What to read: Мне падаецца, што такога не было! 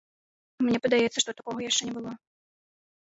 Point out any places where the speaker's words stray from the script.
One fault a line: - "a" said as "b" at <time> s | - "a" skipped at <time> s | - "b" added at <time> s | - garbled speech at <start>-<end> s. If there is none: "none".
- "яшчэ" added at 1.7 s